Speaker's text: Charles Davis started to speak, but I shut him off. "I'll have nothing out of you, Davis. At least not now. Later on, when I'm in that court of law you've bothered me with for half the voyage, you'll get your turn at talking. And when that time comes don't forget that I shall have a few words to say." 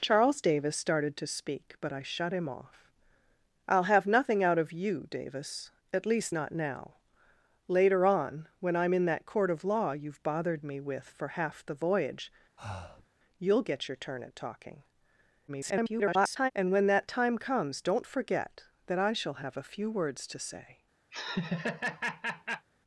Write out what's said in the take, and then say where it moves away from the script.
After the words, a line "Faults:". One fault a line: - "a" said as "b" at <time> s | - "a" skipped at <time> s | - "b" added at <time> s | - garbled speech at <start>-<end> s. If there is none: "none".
Charles Davis started to speak, but I shut him off. "I'll have nothing out of you, Davis. At least not now. Later on, when I'm in that court of law you've bothered me with for half the voyage, you'll get your turn at talking. [garbled] And when that time comes don't forget that I shall have a few words to say."
Faults:
- garbled speech at 15.5-16.5 s